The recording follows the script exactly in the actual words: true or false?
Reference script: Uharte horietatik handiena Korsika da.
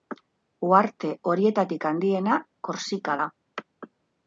true